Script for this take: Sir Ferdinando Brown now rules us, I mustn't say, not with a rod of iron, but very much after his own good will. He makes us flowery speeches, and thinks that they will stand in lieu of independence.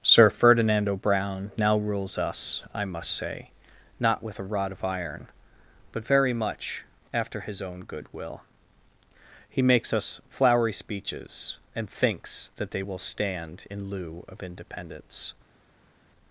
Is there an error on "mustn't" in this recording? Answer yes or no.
yes